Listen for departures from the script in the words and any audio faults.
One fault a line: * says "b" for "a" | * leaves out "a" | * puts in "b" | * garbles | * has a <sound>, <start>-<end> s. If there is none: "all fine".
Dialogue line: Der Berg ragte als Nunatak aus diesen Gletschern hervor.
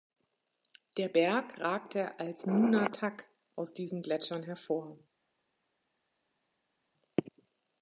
all fine